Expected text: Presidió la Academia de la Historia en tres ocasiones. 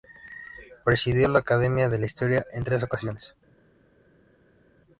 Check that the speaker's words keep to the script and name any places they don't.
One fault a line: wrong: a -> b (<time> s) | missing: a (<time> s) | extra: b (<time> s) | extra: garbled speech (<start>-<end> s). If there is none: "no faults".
no faults